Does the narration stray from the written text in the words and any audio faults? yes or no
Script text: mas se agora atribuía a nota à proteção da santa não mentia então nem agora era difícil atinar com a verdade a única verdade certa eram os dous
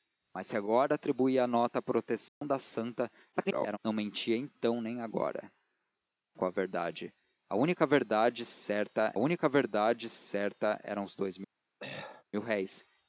yes